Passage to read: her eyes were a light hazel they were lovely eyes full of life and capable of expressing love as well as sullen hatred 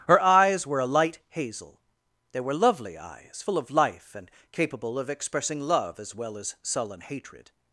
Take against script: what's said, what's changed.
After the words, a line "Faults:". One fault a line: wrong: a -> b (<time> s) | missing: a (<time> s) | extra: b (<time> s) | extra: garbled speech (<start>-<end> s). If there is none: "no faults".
her eyes were a light hazel they were lovely eyes full of life and capable of expressing love as well as sullen hatred
Faults:
no faults